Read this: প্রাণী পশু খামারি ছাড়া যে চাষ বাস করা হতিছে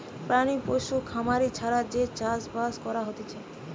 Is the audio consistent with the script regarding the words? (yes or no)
yes